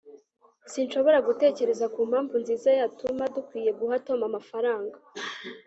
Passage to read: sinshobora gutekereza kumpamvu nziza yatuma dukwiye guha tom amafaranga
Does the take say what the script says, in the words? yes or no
yes